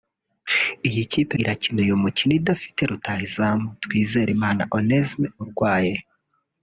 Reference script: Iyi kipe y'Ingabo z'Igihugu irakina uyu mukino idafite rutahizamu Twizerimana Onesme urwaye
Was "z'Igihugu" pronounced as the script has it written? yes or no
no